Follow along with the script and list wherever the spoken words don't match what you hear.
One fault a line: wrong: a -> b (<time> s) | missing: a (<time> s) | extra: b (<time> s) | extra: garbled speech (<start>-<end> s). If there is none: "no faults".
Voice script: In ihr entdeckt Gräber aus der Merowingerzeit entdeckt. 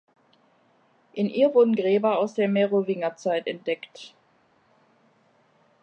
wrong: entdeckt -> wurden (1.5 s)